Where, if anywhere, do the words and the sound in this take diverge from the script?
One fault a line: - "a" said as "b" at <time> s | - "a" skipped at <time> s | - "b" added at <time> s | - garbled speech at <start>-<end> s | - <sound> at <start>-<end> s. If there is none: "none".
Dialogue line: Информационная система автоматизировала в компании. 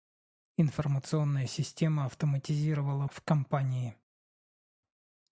none